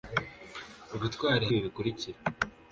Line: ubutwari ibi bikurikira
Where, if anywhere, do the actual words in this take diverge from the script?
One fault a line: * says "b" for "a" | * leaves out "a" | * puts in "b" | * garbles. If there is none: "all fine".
all fine